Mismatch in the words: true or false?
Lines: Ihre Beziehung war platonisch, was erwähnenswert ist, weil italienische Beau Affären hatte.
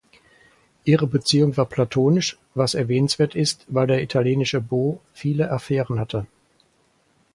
true